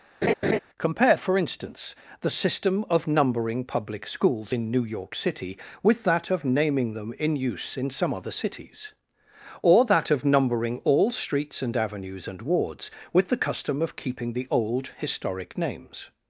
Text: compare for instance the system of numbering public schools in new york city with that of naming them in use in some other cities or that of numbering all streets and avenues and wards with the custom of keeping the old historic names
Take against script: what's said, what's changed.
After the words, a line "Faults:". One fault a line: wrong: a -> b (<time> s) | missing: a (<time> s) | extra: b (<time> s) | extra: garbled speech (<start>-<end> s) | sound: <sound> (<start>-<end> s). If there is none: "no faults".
compare for instance the system of numbering public schools in new york city with that of naming them in use in some other cities or that of numbering all streets and avenues and wards with the custom of keeping the old historic names
Faults:
sound: laugh (0.2-0.6 s)